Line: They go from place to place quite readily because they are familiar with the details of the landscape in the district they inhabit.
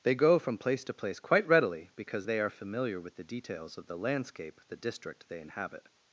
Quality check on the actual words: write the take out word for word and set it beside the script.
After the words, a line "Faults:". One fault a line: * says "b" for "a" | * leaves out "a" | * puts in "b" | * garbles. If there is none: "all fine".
They go from place to place quite readily because they are familiar with the details of the landscape the district they inhabit.
Faults:
* leaves out "in"